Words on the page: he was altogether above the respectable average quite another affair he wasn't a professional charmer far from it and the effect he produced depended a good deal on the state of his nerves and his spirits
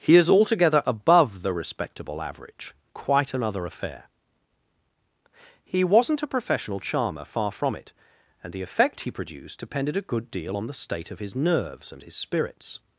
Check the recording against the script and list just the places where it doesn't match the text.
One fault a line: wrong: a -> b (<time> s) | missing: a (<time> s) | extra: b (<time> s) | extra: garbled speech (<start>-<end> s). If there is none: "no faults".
wrong: was -> is (0.1 s)